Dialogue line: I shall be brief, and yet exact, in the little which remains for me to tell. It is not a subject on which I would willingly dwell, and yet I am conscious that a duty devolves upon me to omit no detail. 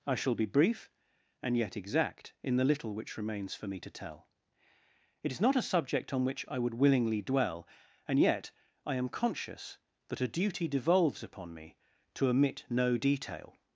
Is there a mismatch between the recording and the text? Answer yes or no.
no